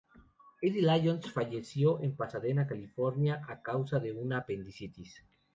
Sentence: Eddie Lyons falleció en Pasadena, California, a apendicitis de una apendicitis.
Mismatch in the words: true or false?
true